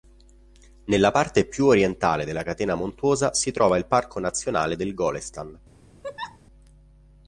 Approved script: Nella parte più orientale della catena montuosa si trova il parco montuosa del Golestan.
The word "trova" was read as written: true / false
true